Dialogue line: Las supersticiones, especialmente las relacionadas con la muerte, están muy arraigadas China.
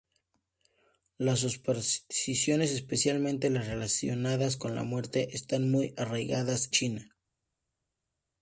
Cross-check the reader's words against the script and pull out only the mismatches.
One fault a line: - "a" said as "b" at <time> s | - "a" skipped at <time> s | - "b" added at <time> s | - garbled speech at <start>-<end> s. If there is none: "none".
none